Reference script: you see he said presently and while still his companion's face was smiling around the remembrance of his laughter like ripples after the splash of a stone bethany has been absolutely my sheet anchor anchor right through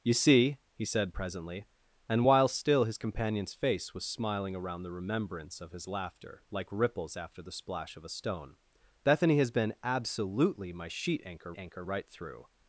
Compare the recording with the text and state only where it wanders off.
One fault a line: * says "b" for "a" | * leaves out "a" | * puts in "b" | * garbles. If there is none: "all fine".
all fine